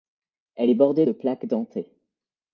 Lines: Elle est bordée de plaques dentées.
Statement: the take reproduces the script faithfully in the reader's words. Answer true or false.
true